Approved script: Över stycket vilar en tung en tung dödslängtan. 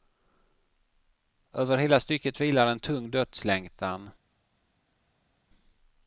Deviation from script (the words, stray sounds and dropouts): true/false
true